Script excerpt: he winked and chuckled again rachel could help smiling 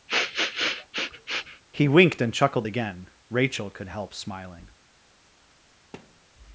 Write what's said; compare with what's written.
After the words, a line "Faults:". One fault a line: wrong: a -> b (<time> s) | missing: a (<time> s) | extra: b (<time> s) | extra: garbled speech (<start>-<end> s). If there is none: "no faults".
he winked and chuckled again rachel could help smiling
Faults:
no faults